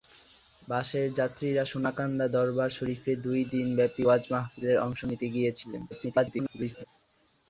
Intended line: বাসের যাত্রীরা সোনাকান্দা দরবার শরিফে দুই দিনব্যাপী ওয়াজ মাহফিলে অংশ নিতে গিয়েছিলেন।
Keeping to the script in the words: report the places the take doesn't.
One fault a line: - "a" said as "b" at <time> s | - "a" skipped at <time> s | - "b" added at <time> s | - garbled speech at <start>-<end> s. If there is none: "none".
- garbled speech at 5.9-6.8 s